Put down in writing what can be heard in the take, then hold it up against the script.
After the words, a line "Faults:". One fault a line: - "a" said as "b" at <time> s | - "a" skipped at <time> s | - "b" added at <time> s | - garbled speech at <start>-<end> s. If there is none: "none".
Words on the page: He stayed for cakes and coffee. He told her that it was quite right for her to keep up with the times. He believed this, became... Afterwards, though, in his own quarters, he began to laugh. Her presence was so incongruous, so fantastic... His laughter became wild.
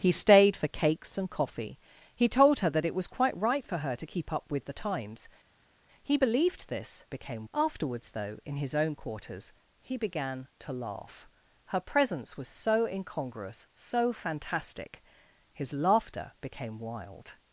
He stayed for cakes and coffee. He told her that it was quite right for her to keep up with the times. He believed this, became... Afterwards, though, in his own quarters, he began to laugh. Her presence was so incongruous, so fantastic... His laughter became wild.
Faults:
none